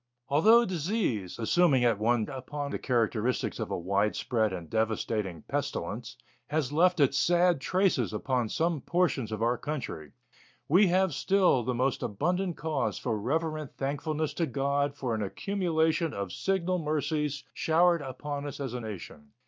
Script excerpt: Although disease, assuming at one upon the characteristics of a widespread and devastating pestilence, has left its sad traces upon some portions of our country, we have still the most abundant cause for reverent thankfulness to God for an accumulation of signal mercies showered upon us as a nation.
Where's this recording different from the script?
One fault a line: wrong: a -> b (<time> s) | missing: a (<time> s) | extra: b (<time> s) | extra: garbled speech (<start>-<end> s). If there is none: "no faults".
no faults